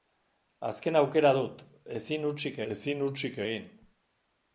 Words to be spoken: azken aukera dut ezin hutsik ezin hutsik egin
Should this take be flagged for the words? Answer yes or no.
no